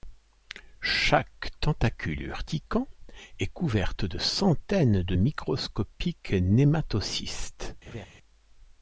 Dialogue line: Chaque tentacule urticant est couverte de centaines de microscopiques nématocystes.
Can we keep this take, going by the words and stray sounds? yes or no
no